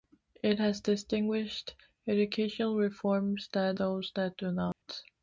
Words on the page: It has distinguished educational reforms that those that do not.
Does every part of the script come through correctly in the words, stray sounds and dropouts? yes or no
no